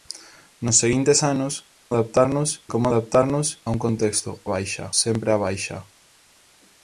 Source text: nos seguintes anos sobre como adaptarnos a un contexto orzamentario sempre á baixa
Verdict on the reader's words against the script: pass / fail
fail